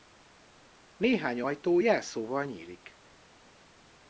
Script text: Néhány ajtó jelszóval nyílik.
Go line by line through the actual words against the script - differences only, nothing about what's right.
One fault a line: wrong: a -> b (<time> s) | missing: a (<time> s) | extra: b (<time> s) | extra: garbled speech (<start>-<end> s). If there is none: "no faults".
no faults